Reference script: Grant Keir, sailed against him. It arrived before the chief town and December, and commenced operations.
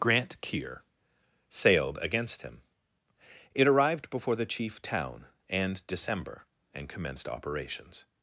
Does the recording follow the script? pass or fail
pass